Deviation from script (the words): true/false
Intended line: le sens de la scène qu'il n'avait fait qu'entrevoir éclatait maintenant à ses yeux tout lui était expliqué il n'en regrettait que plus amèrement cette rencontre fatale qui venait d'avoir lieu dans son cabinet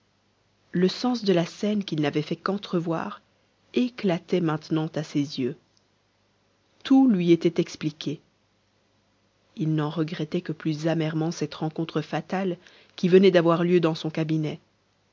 false